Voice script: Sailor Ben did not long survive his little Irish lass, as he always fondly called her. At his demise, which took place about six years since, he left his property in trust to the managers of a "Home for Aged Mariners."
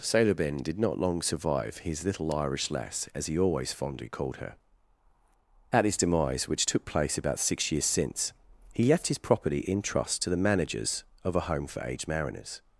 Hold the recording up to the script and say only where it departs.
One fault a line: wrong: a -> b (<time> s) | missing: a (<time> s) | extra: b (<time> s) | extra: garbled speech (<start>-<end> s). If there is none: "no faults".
no faults